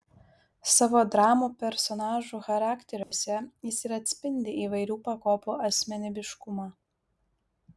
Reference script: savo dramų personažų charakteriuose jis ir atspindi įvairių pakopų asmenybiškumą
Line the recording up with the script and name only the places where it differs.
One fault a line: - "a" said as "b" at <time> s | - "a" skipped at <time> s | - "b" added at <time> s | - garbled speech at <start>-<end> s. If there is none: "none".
none